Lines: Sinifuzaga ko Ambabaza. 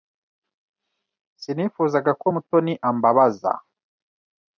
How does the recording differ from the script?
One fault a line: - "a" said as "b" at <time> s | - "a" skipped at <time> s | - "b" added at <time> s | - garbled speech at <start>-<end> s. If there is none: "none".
- "Mutoni" added at 2.3 s